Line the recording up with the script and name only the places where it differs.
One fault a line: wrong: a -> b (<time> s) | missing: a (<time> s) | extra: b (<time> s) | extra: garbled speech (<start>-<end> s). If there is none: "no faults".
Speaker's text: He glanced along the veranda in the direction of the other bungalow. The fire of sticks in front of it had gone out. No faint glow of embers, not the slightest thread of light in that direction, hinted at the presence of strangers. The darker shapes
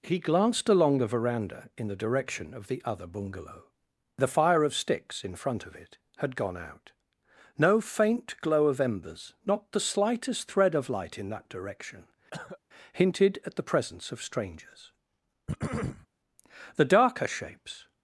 no faults